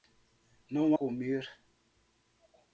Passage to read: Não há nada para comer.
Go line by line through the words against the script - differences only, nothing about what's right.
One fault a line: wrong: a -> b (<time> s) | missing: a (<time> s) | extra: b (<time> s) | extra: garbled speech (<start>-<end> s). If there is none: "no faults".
missing: há nada para (1.0 s)